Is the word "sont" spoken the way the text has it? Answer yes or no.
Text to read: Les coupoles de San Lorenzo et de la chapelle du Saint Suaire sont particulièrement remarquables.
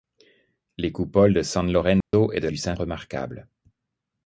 no